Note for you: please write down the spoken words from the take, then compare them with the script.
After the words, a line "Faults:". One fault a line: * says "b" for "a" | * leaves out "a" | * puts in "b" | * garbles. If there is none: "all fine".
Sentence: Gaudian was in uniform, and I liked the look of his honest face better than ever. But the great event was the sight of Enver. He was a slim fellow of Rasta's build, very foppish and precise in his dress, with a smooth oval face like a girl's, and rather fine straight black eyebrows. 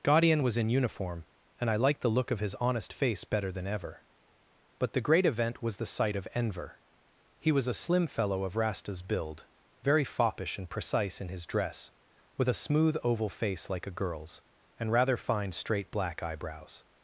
Gaudian was in uniform, and I liked the look of his honest face better than ever. But the great event was the sight of Enver. He was a slim fellow of Rasta's build, very foppish and precise in his dress, with a smooth oval face like a girl's, and rather fine straight black eyebrows.
Faults:
all fine